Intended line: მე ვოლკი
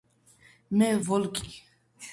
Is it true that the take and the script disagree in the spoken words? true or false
false